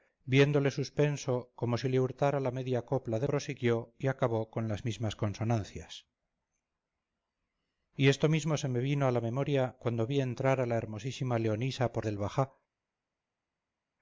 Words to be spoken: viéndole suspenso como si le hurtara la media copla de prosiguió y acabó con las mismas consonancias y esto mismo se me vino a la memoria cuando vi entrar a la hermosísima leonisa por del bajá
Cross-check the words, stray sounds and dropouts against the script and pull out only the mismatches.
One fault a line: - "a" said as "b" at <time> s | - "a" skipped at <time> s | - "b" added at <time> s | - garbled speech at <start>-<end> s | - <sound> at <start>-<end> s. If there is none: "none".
none